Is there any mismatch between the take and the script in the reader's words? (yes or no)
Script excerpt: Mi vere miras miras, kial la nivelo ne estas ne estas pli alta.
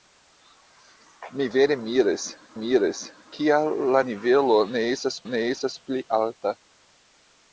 no